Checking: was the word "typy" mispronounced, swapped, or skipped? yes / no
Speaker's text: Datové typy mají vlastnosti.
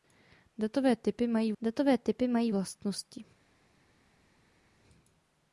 no